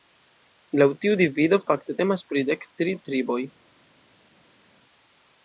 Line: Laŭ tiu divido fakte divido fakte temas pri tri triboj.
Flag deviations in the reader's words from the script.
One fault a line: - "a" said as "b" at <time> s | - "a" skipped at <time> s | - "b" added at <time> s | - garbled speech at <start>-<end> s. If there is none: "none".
- "divido fakte" skipped at 2.0 s
- "dek" added at 2.5 s